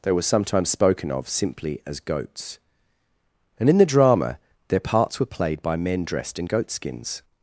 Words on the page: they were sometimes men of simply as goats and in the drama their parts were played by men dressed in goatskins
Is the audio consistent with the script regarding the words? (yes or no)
no